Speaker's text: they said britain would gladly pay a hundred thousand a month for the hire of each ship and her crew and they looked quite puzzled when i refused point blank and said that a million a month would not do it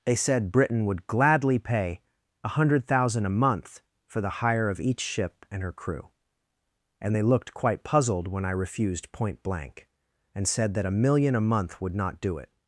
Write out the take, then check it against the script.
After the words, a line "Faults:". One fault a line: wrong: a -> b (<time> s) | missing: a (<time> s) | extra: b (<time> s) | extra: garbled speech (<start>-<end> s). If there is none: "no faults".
they said britain would gladly pay a hundred thousand a month for the hire of each ship and her crew and they looked quite puzzled when i refused point blank and said that a million a month would not do it
Faults:
no faults